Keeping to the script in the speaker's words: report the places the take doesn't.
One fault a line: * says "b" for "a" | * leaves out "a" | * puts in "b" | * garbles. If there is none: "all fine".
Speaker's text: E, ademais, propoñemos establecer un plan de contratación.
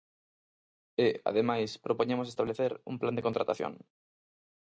all fine